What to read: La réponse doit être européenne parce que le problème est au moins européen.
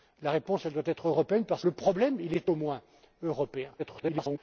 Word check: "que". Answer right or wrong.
wrong